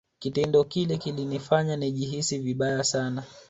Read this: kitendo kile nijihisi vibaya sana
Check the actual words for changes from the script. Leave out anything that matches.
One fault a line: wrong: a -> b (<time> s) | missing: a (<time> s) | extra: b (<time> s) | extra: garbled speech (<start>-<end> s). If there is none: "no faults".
extra: kilinifanya (0.9 s)